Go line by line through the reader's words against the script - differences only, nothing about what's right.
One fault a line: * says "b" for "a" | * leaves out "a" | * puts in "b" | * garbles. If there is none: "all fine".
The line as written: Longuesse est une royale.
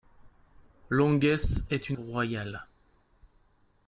all fine